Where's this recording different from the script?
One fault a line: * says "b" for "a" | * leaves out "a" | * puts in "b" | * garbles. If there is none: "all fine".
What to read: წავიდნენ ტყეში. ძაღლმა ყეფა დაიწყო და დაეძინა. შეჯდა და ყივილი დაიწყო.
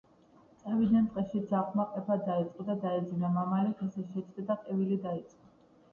* puts in "მამალი ხეზე"